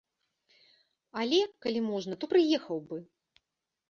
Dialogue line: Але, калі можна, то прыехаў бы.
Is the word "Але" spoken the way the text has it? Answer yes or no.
yes